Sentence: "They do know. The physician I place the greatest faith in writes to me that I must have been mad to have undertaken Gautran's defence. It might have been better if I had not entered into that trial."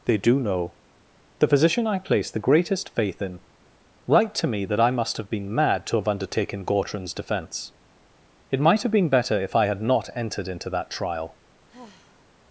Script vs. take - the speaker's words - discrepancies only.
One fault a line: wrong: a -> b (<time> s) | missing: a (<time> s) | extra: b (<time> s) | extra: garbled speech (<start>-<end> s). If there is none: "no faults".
wrong: writes -> write (4.1 s)